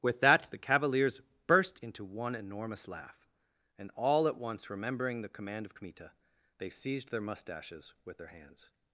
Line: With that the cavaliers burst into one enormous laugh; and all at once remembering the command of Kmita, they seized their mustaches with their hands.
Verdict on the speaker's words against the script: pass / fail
pass